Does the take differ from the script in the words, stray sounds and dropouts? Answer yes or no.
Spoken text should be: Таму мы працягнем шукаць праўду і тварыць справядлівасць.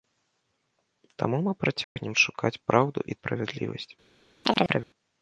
yes